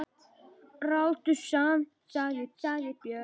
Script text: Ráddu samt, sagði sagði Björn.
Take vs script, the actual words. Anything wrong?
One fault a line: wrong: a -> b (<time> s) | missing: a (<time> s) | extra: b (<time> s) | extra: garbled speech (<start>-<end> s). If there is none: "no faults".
no faults